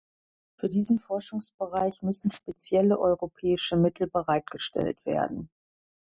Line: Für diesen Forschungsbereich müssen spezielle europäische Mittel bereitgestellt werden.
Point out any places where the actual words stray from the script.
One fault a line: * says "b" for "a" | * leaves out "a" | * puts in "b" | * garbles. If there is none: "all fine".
all fine